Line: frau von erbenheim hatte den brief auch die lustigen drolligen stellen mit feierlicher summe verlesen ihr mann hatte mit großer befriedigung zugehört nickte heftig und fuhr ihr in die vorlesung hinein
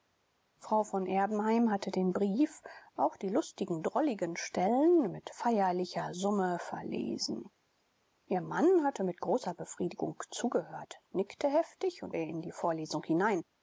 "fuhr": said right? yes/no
no